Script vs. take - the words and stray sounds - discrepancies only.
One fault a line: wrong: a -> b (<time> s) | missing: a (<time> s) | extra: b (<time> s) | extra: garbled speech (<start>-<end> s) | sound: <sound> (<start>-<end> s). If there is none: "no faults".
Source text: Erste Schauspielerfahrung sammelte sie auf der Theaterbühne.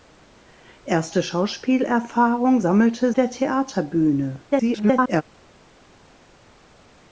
missing: sie auf (3.1 s)
extra: garbled speech (4.5-5.2 s)